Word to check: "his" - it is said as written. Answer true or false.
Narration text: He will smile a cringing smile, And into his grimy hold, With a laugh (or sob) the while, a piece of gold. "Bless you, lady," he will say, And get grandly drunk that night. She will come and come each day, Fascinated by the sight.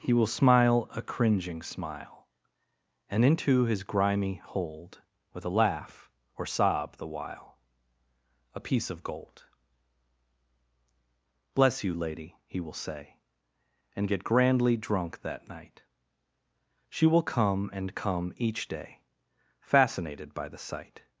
true